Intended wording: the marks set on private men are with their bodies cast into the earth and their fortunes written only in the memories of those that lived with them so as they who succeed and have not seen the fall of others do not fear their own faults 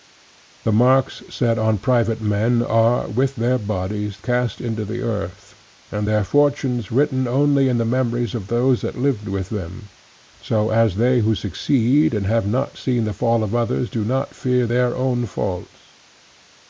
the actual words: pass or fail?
pass